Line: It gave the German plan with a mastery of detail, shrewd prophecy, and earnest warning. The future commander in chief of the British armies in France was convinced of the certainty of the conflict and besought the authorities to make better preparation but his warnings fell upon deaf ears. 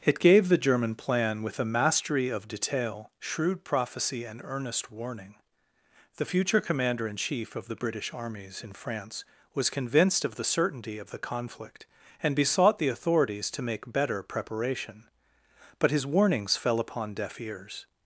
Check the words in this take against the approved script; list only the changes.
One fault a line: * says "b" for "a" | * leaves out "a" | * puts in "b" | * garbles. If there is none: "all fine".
all fine